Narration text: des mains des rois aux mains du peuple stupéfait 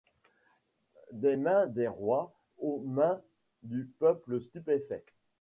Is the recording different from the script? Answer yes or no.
no